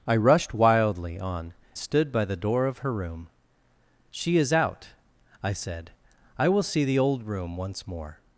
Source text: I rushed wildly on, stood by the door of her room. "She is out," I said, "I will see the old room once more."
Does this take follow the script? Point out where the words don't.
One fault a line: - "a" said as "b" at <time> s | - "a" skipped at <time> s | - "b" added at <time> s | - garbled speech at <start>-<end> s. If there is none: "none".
none